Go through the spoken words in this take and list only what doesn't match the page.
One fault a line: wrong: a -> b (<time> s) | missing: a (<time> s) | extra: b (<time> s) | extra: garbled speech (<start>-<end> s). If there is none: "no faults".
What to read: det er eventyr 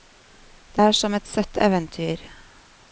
extra: som et søtt (0.9 s)